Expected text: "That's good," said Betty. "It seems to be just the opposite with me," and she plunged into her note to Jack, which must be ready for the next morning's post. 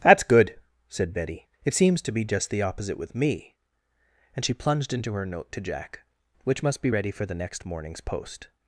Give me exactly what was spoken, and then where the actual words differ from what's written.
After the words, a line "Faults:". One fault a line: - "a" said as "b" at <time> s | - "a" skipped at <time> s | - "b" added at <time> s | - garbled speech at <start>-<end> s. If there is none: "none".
"That's good," said Betty. "It seems to be just the opposite with me," and she plunged into her note to Jack, which must be ready for the next morning's post.
Faults:
none